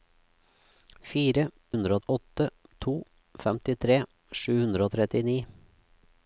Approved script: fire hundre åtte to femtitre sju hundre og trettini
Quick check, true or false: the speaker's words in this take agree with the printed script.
true